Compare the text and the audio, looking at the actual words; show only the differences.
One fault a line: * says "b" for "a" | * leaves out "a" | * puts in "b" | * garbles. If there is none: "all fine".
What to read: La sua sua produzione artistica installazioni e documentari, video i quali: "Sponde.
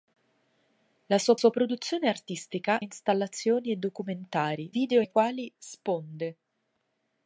all fine